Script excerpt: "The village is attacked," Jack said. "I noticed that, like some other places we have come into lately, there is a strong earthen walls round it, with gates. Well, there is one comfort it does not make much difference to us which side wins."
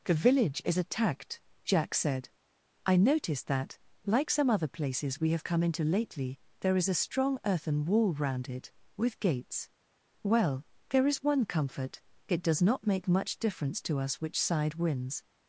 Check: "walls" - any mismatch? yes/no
yes